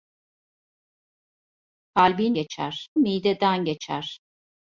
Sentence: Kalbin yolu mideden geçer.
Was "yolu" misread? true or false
true